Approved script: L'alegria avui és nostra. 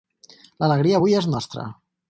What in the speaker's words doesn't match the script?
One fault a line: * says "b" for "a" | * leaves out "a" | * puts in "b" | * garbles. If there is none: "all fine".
all fine